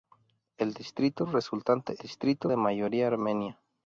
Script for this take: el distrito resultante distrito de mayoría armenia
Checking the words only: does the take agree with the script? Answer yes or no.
yes